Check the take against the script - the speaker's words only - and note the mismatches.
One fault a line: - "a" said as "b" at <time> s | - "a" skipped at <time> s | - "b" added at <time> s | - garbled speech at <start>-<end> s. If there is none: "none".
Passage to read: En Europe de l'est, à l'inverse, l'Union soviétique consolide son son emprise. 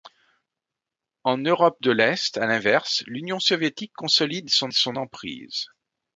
none